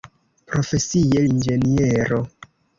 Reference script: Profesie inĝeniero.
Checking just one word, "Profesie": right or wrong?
right